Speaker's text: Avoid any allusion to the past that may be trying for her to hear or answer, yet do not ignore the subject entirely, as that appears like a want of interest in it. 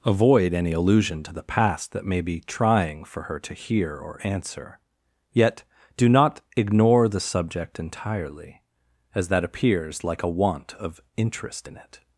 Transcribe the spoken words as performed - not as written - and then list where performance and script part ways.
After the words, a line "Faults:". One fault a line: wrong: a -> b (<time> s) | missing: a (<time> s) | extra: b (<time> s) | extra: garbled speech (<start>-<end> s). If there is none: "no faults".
Avoid any allusion to the past that may be trying for her to hear or answer, yet do not ignore the subject entirely, as that appears like a want of interest in it.
Faults:
no faults